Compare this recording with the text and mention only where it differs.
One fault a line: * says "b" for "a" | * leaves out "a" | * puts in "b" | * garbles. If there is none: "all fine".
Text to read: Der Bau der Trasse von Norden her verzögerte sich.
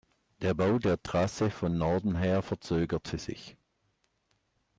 all fine